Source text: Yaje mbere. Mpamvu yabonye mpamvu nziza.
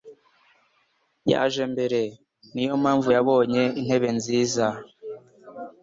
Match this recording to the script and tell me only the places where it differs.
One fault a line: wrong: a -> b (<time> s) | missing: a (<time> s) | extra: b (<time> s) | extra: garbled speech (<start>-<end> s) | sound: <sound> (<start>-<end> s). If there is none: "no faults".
extra: Niyo (2.5 s)
wrong: mpamvu -> intebe (3.8 s)